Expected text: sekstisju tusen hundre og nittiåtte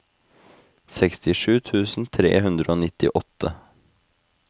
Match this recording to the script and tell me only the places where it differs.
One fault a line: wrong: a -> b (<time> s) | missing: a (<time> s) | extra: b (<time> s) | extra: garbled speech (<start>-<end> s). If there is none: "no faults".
extra: tre (2.2 s)